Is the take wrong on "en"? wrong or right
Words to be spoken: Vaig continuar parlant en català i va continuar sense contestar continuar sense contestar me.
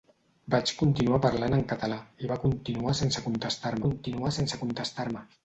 right